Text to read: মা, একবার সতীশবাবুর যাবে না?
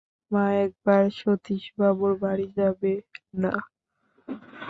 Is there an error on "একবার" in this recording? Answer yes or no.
no